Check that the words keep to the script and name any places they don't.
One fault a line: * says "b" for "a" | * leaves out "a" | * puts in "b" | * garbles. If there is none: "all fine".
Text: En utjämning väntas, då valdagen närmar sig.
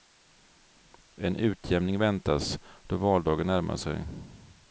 all fine